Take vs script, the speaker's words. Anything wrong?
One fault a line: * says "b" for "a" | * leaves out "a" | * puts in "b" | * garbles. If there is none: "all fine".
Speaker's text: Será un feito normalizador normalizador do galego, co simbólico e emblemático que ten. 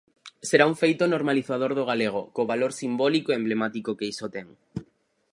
* leaves out "normalizador"
* puts in "valor"
* puts in "iso"